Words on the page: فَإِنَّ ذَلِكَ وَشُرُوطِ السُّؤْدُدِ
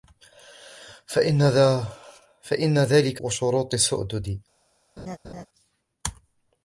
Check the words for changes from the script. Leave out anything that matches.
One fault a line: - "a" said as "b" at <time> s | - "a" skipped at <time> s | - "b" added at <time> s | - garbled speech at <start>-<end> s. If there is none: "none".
none